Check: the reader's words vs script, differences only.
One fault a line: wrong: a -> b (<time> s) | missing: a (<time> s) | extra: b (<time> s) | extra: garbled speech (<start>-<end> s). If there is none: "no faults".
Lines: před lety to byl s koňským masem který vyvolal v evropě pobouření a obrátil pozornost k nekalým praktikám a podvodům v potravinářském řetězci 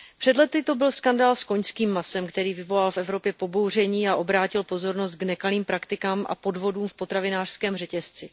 extra: skandál (0.9 s)